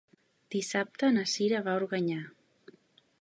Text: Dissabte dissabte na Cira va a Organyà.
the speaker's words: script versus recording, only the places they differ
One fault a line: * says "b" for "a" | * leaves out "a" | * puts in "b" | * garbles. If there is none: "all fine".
* leaves out "dissabte"